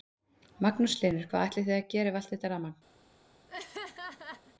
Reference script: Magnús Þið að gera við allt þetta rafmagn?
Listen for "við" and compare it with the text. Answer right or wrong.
right